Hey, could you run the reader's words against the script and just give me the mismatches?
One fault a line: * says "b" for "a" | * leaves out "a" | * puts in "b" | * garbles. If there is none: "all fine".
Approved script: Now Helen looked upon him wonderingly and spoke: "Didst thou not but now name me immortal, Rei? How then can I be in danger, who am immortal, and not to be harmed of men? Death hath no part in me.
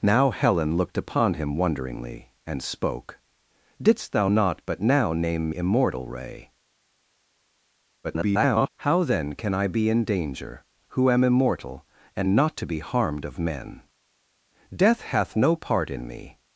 * leaves out "me"
* garbles